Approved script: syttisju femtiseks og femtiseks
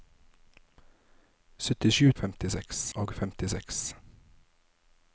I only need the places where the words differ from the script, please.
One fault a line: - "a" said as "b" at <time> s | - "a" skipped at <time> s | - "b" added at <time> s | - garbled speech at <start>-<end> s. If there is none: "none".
none